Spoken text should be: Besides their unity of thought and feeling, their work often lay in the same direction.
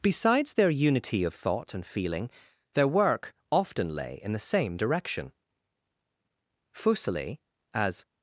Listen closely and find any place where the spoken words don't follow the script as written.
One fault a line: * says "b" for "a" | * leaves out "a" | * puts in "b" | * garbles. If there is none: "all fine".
* puts in "Fuseli as"